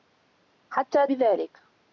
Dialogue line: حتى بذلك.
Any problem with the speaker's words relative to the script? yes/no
no